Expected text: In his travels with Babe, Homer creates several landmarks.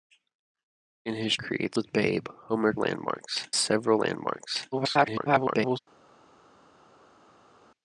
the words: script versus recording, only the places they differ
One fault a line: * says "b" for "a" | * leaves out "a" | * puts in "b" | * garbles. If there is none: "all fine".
* says "creates" for "travels"
* says "landmarks" for "creates"
* garbles